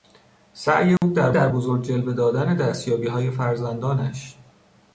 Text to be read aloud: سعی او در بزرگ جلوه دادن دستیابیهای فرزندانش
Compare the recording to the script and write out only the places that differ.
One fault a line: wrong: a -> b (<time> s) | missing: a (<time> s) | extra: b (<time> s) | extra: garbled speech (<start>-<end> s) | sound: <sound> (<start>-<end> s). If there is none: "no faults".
sound: dropout (1.0-1.0 s)
extra: در (1.3 s)